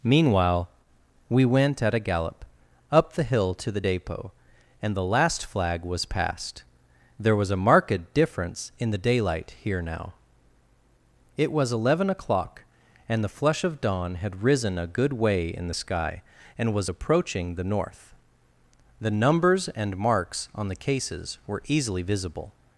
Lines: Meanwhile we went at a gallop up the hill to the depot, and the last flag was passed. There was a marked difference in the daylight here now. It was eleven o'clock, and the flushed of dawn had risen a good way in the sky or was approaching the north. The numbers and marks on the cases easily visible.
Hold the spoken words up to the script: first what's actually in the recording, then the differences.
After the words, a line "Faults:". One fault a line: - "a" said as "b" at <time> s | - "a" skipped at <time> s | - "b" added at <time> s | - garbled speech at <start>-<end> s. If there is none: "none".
Meanwhile we went at a gallop up the hill to the depot, and the last flag was passed. There was a marked difference in the daylight here now. It was eleven o'clock, and the flush of dawn had risen a good way in the sky and was approaching the north. The numbers and marks on the cases were easily visible.
Faults:
- "flushed" said as "flush" at 13.3 s
- "or" said as "and" at 16.6 s
- "were" added at 21.5 s